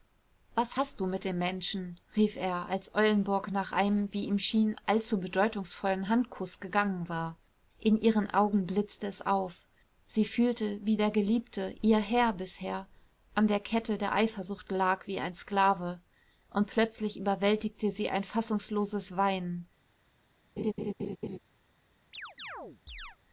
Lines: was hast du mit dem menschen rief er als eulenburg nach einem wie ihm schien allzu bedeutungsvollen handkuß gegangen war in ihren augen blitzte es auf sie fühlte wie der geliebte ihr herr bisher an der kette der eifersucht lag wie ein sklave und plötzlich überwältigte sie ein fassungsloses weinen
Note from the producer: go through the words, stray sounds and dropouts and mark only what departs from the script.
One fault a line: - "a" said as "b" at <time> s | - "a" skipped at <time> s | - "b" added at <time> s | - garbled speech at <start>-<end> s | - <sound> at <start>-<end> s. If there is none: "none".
- laugh at 20.6-21.4 s
- chirp at 22.1-23.2 s